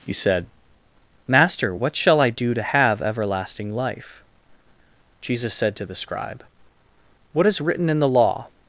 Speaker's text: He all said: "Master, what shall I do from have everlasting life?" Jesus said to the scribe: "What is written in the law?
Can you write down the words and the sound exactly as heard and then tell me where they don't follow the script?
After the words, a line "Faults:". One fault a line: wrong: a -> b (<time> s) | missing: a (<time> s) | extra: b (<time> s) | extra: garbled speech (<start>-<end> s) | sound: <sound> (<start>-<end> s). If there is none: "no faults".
He said: "Master, what shall I do to have everlasting life?" Jesus said to the scribe: "What is written in the law?
Faults:
missing: all (0.1 s)
wrong: from -> to (2.5 s)